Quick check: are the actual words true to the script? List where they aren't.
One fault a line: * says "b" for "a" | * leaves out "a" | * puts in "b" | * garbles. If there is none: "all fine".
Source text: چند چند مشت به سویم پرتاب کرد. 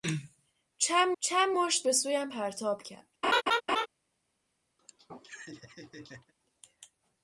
all fine